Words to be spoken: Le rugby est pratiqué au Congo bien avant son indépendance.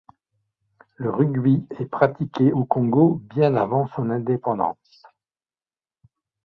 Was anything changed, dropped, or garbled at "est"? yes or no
no